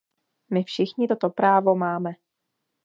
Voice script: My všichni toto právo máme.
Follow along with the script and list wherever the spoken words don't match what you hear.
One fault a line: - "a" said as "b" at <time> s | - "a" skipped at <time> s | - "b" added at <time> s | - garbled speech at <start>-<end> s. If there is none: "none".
none